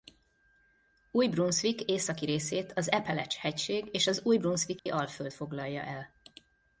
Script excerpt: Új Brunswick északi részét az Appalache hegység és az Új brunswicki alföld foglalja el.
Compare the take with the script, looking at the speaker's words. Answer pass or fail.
pass